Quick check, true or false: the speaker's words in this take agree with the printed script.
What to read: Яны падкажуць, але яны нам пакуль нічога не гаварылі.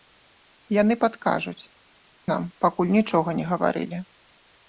false